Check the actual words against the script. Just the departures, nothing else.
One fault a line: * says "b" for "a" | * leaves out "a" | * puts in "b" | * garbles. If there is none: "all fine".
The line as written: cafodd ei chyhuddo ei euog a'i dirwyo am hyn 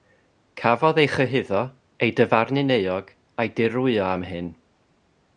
* puts in "dyfarnu'n"